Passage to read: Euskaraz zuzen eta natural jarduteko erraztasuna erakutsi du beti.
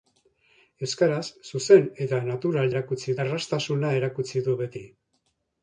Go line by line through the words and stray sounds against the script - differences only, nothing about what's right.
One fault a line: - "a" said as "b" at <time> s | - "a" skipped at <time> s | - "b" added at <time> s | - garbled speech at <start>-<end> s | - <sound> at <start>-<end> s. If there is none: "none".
- "jarduteko" said as "erakutsi" at 2.7 s